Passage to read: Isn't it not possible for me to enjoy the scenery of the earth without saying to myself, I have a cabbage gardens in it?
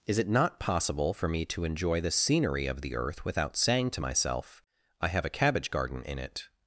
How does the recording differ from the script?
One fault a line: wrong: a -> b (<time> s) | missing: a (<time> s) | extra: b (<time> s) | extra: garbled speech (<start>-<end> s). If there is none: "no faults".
wrong: Isn't -> Is (0.1 s)
wrong: gardens -> garden (5.7 s)